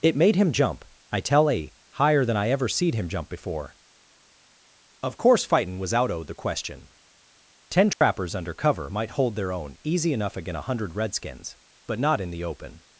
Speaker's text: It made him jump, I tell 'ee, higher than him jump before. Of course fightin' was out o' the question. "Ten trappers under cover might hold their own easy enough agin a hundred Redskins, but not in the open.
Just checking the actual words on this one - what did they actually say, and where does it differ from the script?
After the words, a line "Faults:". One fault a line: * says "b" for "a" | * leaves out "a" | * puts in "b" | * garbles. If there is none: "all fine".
It made him jump, I tell 'ee, higher than I ever seed him jump before. Of course fightin' was out o' the question. "Ten trappers under cover might hold their own easy enough agin a hundred Redskins, but not in the open.
Faults:
* puts in "I ever seed"